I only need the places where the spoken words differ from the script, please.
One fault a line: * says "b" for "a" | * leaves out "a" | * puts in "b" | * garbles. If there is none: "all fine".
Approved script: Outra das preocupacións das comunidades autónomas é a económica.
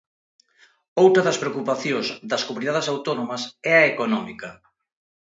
all fine